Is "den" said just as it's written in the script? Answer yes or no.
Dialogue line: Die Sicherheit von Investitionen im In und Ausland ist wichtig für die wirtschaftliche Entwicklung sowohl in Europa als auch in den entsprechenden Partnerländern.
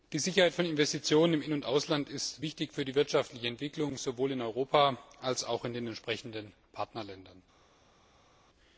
yes